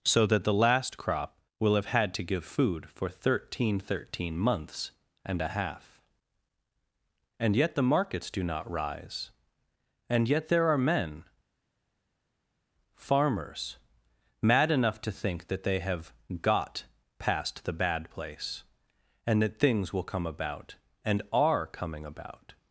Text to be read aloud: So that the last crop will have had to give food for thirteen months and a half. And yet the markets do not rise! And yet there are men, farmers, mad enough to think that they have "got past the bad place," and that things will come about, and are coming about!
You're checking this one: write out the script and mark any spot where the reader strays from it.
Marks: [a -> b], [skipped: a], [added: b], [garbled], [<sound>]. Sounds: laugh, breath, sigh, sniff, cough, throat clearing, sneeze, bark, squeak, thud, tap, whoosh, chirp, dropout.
So that the last crop will have had to give food for thirteen [added: thirteen] months and a half. And yet the markets do not rise! And yet there are men, farmers, mad enough to think that they have "got past the bad place," and that things will come about, and are coming about!